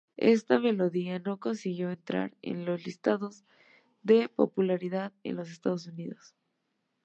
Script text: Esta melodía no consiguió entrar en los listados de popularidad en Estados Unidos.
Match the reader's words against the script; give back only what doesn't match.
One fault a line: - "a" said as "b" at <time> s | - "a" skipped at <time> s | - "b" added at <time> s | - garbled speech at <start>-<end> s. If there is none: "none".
- "los" added at 5.4 s